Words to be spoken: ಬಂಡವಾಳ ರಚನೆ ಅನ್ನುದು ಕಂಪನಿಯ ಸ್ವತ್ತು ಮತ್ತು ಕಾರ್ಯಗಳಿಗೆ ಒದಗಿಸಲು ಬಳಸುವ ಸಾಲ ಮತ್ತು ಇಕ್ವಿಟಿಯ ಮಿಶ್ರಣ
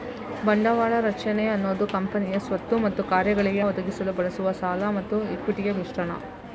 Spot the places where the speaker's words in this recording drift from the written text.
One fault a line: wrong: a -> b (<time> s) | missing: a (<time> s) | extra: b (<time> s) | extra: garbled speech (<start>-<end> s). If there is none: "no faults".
no faults